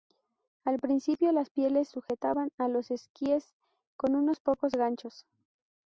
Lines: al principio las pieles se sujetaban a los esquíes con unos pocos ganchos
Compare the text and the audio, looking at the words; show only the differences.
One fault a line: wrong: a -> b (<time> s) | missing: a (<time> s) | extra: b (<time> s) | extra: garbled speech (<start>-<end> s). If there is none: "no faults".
missing: se (1.9 s)